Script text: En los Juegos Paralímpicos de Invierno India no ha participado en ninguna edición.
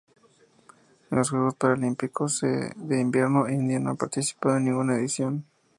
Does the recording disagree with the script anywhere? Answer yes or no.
no